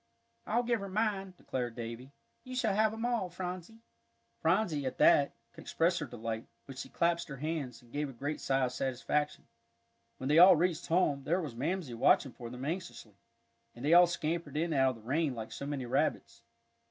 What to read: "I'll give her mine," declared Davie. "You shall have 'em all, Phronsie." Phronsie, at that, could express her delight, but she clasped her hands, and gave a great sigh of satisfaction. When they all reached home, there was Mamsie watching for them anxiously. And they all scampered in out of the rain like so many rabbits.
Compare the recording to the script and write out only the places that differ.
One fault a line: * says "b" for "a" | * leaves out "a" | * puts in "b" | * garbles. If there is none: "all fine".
all fine